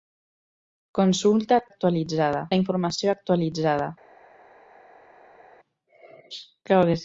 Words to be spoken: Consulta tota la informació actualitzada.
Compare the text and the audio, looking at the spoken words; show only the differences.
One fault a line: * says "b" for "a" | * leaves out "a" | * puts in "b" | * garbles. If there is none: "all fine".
* says "actualitzada" for "tota"